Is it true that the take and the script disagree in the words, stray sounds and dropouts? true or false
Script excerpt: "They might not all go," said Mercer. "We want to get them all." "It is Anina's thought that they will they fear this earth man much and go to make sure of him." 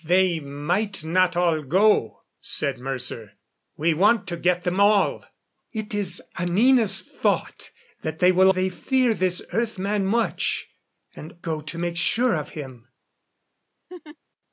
true